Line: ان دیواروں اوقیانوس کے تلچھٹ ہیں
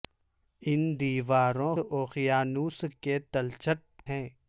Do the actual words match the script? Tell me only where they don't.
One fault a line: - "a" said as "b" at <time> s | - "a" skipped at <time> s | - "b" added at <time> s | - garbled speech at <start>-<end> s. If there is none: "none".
none